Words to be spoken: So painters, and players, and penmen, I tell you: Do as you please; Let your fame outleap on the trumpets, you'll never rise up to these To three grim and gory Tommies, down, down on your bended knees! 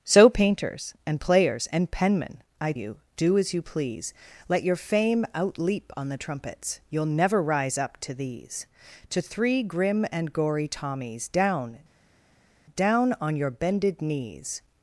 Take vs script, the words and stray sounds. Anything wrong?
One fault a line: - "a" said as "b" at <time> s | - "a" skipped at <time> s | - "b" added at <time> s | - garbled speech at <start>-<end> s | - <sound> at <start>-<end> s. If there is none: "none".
- "tell" skipped at 2.7 s